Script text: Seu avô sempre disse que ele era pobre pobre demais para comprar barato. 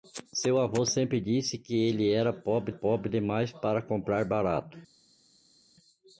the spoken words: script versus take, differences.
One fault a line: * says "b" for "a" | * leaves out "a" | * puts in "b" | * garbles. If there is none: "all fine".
all fine